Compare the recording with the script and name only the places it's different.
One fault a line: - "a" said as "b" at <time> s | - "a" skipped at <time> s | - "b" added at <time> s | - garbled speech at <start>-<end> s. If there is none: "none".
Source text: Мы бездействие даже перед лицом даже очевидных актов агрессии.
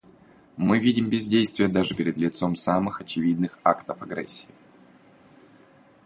- "видим" added at 0.8 s
- "даже" said as "самых" at 2.5 s